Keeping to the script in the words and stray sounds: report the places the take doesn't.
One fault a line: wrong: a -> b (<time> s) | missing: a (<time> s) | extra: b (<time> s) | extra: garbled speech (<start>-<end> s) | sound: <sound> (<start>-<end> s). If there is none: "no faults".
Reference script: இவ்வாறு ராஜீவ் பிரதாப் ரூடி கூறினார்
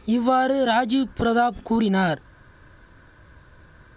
missing: ரூடி (1.6 s)